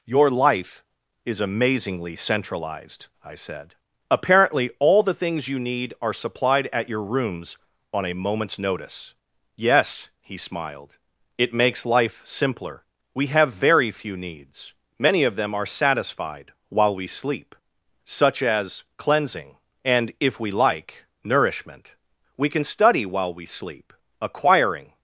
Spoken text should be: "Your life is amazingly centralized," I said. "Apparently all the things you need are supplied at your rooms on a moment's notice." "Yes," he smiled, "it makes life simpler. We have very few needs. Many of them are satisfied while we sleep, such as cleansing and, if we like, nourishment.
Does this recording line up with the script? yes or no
no